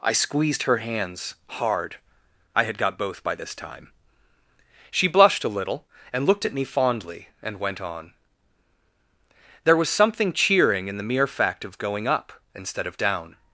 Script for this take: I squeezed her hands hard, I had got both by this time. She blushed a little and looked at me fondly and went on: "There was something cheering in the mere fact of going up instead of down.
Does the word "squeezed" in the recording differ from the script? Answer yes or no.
no